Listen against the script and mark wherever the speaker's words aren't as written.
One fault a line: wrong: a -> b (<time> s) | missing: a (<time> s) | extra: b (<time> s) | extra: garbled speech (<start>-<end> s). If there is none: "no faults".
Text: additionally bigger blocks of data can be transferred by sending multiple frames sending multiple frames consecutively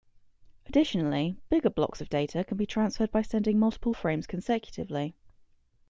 missing: sending multiple frames (4.3 s)